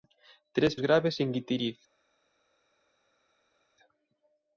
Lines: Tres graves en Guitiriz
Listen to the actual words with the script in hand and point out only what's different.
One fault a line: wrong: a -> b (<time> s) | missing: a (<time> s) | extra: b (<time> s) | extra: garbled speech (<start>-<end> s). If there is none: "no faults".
no faults